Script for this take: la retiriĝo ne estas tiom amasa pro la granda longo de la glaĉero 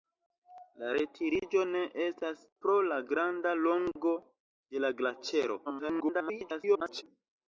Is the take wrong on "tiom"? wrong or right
wrong